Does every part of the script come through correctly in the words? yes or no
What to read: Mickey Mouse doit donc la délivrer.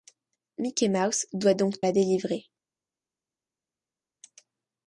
yes